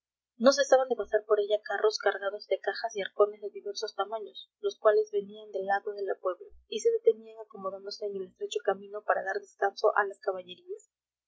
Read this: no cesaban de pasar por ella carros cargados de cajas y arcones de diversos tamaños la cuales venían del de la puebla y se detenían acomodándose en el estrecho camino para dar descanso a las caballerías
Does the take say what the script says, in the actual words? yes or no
no